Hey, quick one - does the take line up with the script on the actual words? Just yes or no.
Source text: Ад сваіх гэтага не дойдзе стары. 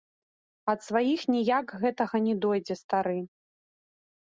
no